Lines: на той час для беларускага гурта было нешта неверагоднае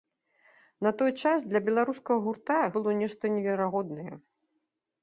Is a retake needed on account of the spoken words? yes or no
no